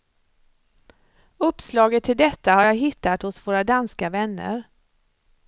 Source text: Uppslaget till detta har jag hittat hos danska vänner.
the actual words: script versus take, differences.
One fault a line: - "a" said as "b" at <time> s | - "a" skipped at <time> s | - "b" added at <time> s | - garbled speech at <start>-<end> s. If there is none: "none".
- "våra" added at 3.5 s